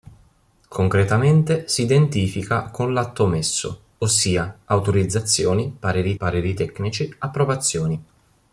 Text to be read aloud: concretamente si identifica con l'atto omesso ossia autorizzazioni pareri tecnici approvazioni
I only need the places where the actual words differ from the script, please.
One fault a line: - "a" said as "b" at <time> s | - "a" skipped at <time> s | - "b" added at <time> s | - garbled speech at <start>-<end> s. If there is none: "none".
- "pareri" added at 6.1 s